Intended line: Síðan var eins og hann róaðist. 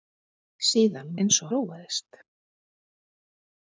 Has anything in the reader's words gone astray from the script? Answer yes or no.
yes